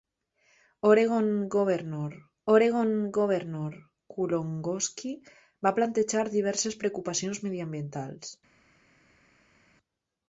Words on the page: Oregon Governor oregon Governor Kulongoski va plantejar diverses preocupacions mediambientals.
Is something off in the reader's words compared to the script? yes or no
no